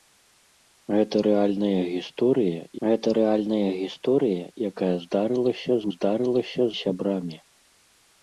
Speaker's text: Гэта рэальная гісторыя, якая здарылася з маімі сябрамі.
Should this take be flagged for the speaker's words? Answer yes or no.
yes